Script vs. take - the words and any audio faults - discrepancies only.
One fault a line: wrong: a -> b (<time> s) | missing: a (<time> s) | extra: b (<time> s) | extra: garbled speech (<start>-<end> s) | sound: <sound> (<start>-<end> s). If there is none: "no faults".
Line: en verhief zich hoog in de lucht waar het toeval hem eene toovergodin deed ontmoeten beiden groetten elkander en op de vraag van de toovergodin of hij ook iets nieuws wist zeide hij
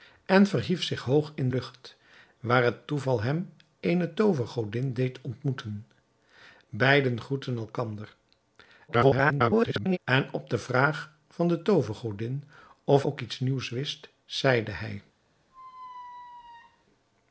missing: de (1.5 s)
extra: garbled speech (8.9-10.0 s)
missing: hij (13.0 s)
sound: squeak (15.5-16.9 s)